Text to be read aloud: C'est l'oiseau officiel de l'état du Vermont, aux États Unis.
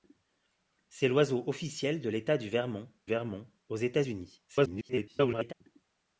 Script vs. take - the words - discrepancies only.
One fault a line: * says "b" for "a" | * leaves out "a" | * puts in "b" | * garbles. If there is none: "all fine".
* puts in "Vermont"
* garbles